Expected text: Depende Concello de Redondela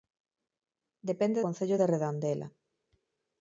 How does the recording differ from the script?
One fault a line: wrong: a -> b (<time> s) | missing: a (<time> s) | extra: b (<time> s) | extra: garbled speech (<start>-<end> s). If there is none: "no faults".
no faults